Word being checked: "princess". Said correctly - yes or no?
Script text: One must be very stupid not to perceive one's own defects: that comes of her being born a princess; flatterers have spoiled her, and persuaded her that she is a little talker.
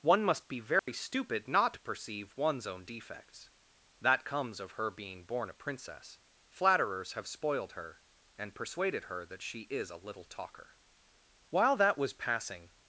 yes